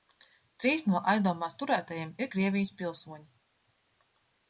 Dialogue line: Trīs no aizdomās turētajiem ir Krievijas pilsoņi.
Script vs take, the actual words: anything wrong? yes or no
no